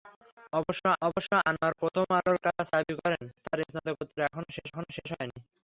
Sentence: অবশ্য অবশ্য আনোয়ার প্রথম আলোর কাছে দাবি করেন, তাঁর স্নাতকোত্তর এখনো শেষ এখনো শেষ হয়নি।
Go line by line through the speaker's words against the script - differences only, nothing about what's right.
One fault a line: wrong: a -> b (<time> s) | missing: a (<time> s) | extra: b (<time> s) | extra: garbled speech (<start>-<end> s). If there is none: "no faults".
no faults